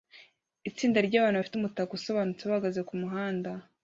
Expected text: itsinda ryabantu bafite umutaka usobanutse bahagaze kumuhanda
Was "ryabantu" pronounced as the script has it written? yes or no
yes